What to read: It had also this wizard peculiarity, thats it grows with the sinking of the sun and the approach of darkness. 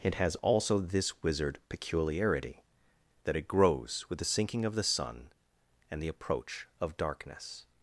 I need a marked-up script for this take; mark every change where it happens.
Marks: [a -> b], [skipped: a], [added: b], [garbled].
It [had -> has] also this wizard peculiarity, [thats -> that] it grows with the sinking of the sun and the approach of darkness.